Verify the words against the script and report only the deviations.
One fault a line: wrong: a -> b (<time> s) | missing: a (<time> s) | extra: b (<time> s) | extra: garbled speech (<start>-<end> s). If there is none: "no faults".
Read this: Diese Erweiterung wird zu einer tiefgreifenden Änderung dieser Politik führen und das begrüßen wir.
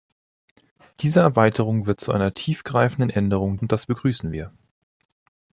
missing: dieser Politik führen (3.5 s)